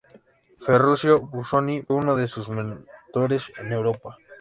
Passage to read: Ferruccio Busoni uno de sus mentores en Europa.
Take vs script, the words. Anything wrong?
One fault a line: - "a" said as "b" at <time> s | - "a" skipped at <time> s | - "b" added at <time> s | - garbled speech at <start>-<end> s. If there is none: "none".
none